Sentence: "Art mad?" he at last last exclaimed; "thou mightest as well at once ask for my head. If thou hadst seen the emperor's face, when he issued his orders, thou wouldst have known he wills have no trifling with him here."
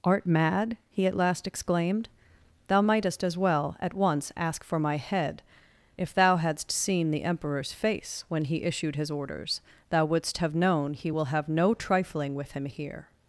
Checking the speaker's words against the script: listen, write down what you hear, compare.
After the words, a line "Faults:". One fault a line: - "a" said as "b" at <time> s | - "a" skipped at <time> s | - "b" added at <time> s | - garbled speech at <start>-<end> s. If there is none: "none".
"Art mad?" he at last exclaimed; "thou mightest as well at once ask for my head. If thou hadst seen the emperor's face, when he issued his orders, thou wouldst have known he will have no trifling with him here."
Faults:
- "last" skipped at 1.4 s
- "wills" said as "will" at 11.1 s